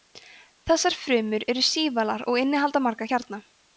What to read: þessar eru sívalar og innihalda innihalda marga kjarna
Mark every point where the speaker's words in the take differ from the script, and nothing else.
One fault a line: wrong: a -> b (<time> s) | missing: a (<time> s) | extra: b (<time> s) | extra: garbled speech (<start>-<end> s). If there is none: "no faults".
extra: frumur (1.0 s)
missing: innihalda (2.8 s)